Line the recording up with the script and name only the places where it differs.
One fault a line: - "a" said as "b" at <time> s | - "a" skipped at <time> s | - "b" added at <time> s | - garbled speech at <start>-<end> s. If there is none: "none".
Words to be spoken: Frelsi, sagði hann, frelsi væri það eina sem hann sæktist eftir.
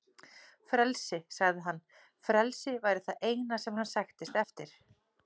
none